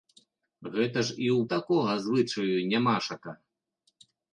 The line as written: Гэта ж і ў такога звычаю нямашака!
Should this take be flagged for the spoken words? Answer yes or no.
no